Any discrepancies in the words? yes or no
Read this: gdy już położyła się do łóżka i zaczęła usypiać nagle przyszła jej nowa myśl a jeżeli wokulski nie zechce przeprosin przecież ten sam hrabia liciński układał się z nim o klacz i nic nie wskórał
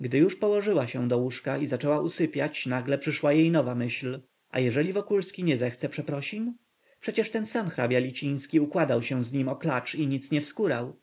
no